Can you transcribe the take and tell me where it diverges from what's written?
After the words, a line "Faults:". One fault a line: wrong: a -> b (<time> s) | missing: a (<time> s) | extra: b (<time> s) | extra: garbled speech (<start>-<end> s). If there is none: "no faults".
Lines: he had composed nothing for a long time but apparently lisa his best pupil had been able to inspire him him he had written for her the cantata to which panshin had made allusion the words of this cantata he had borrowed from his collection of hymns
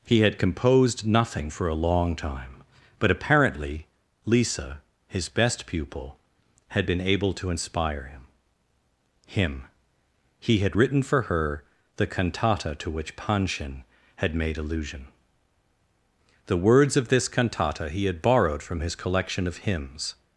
he had composed nothing for a long time but apparently lisa his best pupil had been able to inspire him him he had written for her the cantata to which panshin had made allusion the words of this cantata he had borrowed from his collection of hymns
Faults:
no faults